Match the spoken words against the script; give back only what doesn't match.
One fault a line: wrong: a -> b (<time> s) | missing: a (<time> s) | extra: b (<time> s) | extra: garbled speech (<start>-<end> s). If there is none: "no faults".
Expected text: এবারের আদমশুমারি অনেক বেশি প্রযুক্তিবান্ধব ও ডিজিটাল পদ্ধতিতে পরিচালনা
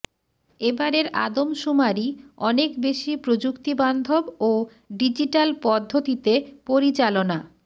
no faults